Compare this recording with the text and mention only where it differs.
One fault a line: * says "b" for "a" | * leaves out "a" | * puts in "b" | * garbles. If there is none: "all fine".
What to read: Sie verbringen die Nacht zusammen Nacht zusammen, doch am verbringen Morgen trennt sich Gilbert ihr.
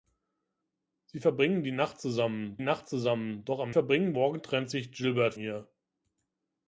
all fine